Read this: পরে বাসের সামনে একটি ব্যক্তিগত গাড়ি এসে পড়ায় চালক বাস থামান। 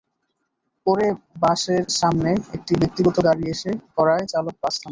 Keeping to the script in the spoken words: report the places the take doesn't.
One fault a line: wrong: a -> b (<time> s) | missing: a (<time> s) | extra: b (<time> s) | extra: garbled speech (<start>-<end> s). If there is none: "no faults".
no faults